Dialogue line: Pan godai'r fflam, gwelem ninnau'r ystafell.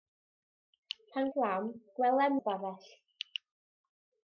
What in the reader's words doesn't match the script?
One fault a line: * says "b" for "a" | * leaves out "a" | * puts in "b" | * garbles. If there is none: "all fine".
* leaves out "godai'r"
* leaves out "ninnau'r"